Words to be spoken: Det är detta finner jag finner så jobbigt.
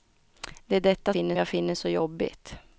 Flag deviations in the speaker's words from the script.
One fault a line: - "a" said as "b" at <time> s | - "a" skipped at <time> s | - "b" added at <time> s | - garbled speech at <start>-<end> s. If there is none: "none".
none